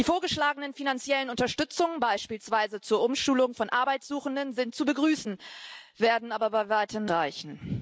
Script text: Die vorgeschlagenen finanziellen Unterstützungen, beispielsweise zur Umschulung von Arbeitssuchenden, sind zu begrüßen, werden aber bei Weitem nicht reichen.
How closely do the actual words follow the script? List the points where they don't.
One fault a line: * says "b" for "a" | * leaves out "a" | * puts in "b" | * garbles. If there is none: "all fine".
* leaves out "nicht"